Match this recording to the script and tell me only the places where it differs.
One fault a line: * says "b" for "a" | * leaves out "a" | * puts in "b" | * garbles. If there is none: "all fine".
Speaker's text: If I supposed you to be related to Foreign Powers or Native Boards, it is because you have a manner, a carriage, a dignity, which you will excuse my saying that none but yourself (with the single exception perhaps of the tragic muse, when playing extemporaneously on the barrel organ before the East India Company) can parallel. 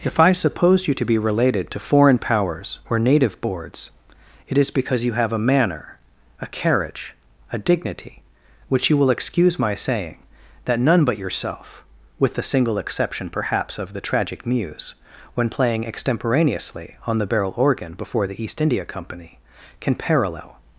* says "suppose" for "supposed"